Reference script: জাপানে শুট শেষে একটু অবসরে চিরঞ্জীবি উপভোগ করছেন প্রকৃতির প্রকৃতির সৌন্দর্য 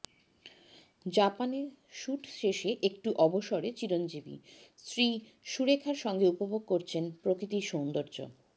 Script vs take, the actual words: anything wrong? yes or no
yes